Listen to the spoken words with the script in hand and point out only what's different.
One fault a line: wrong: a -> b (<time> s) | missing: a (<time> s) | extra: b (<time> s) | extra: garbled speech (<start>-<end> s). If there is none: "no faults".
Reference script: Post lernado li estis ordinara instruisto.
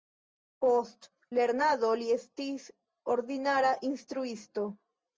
no faults